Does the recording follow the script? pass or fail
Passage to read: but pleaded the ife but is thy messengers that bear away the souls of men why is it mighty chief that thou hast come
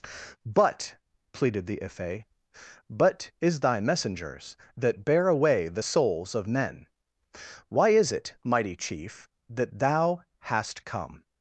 pass